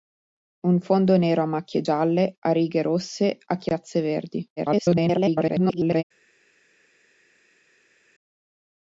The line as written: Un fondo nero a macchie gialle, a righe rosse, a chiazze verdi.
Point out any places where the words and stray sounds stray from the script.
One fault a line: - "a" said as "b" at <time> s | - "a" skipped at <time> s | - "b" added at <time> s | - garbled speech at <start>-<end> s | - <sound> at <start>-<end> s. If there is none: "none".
- garbled speech at 4.6-6.0 s